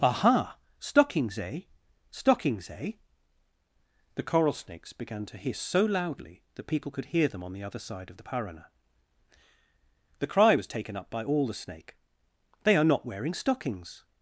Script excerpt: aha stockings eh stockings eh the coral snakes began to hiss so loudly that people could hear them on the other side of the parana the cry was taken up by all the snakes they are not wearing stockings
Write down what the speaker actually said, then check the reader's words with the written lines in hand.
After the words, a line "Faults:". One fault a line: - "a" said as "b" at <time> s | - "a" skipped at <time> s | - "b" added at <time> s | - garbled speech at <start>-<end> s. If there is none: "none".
aha stockings eh stockings eh the coral snakes began to hiss so loudly that people could hear them on the other side of the parana the cry was taken up by all the snake they are not wearing stockings
Faults:
- "snakes" said as "snake" at 11.5 s